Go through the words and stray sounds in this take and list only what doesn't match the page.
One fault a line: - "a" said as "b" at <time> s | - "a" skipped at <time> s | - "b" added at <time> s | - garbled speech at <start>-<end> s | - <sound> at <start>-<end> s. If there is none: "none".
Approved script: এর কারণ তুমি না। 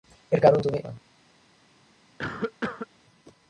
- cough at 2.2-2.9 s